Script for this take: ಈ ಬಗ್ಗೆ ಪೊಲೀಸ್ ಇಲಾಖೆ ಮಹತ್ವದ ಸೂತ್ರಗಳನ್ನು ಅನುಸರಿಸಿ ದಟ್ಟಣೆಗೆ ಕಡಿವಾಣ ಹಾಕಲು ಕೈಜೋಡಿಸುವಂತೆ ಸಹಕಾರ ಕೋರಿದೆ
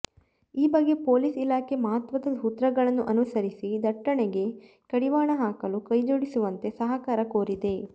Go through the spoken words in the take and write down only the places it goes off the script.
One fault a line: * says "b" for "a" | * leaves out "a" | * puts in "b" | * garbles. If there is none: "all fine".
all fine